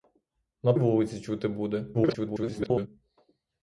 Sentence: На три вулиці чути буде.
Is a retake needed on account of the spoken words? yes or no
yes